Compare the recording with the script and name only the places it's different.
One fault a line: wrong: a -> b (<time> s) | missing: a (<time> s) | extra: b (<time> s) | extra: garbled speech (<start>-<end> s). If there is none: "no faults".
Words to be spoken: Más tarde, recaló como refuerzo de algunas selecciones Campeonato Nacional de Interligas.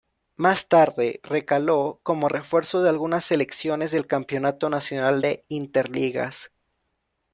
extra: del (3.9 s)